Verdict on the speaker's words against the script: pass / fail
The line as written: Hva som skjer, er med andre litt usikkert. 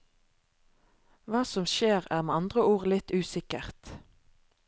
fail